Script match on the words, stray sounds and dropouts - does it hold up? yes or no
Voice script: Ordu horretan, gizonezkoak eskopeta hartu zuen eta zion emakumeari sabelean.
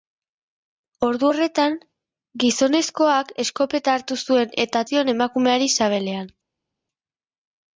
yes